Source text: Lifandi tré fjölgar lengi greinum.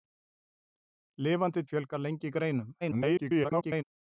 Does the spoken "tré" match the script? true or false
false